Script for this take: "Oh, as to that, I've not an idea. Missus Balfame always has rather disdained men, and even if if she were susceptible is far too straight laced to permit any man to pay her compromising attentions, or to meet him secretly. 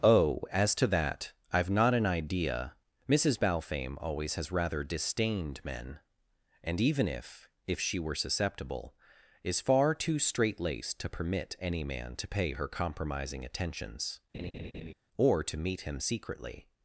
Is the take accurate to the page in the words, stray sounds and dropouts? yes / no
no